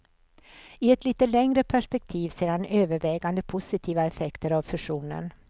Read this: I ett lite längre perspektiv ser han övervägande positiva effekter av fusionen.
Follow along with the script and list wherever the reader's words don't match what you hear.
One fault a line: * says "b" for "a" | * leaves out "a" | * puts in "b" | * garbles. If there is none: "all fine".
all fine